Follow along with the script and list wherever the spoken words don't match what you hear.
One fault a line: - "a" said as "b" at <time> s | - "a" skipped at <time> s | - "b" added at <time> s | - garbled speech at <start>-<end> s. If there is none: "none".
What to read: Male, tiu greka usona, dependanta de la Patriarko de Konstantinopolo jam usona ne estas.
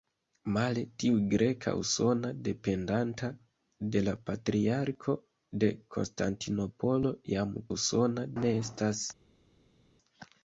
none